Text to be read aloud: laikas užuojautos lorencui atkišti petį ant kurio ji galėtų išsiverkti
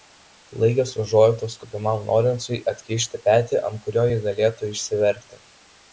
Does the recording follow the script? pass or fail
fail